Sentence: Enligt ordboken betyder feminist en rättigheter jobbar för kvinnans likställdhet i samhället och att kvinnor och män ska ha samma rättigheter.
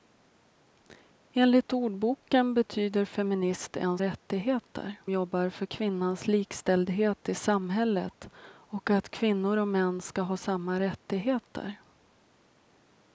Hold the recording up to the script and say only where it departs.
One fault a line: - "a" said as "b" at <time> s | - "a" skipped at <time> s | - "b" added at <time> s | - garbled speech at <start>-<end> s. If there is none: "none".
none